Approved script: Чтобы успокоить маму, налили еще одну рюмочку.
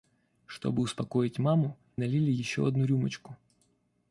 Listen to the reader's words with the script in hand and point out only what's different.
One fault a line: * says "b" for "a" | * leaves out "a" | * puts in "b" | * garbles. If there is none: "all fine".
all fine